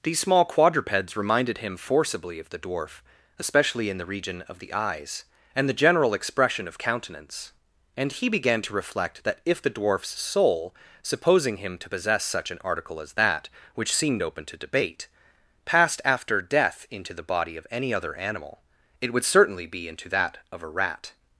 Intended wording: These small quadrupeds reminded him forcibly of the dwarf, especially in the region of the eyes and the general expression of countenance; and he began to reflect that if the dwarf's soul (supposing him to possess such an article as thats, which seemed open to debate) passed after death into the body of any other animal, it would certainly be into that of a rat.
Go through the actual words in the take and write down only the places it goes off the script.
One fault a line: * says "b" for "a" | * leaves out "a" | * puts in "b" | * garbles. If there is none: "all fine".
* says "that" for "thats"